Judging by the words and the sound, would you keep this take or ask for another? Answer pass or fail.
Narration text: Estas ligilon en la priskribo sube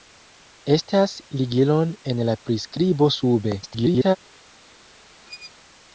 fail